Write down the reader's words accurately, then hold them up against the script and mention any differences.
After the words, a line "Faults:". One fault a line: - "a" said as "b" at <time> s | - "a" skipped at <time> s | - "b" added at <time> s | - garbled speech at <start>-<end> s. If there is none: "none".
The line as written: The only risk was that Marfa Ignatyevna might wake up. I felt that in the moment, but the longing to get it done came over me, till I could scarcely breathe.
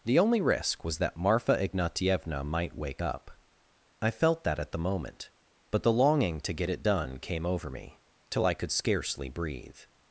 The only risk was that Marfa Ignatyevna might wake up. I felt that at the moment, but the longing to get it done came over me, till I could scarcely breathe.
Faults:
- "in" said as "at" at 4.6 s